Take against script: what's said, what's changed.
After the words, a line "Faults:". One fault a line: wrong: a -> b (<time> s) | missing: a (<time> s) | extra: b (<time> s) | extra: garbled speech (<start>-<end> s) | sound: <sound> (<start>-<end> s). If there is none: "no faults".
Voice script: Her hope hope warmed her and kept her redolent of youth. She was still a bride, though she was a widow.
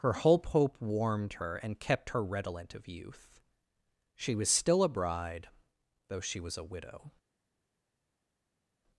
Her hope hope warmed her and kept her redolent of youth. She was still a bride, though she was a widow.
Faults:
no faults